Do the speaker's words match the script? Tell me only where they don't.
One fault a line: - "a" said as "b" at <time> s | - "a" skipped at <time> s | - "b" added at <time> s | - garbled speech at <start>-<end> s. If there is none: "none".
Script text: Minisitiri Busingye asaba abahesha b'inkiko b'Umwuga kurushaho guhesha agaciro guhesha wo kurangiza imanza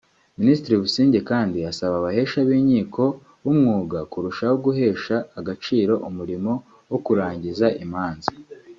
- "kandi" added at 1.3 s
- "guhesha" said as "umurimo" at 6.1 s